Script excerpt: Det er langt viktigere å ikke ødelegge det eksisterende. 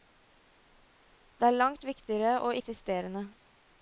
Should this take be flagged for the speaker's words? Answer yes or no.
yes